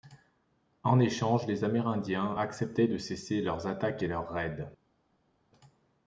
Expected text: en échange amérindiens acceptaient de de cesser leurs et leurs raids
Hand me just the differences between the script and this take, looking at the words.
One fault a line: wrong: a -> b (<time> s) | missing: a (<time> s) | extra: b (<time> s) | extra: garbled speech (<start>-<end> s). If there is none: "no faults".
extra: les (1.4 s)
missing: de (3.0 s)
extra: attaques (3.7 s)